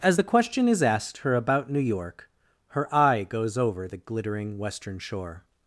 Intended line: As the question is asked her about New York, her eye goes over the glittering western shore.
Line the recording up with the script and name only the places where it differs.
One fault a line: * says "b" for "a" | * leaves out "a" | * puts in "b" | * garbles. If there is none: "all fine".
all fine